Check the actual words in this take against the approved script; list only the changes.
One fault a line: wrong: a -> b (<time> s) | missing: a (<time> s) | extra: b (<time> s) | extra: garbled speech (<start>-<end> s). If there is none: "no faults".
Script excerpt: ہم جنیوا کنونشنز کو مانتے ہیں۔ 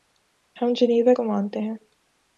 missing: کنونشنز (1.1 s)